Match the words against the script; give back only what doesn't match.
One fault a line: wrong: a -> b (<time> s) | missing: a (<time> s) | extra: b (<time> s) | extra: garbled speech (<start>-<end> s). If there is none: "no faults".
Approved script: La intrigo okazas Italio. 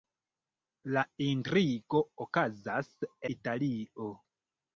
no faults